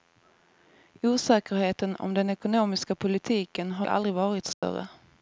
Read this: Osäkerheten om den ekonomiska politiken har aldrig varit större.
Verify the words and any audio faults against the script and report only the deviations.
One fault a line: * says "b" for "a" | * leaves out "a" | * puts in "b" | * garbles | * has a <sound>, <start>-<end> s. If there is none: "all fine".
* has a dropout, 4.5-4.6 s